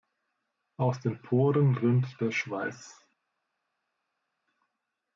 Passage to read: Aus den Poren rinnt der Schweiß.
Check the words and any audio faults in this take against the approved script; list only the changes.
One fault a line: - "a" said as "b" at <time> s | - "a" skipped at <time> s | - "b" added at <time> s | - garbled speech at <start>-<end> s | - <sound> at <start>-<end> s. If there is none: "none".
none